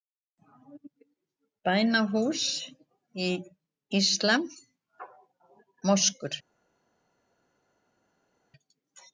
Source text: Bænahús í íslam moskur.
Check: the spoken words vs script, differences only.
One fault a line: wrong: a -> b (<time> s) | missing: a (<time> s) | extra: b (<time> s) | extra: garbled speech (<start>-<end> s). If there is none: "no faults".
no faults